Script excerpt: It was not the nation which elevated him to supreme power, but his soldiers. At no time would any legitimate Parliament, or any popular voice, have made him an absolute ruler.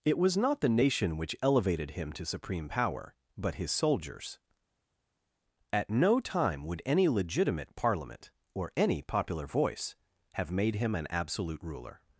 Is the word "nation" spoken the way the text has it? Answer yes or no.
yes